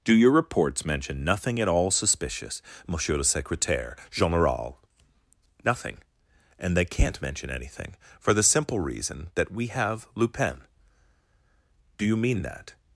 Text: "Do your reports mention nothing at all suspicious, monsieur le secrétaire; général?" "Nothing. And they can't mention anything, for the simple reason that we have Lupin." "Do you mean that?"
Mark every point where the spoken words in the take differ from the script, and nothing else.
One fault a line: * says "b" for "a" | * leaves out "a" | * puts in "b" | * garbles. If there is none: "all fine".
all fine